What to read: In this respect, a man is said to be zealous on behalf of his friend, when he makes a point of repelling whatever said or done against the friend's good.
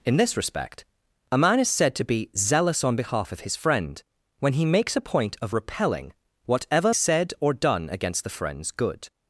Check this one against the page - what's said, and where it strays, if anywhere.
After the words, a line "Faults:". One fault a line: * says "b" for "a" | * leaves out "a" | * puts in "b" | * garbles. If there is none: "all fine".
In this respect, a man is said to be zealous on behalf of his friend, when he makes a point of repelling whatever said or done against the friend's good.
Faults:
all fine